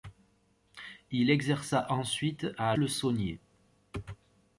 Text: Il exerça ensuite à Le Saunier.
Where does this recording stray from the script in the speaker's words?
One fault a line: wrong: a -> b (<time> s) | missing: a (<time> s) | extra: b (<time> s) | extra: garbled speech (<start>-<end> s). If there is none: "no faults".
no faults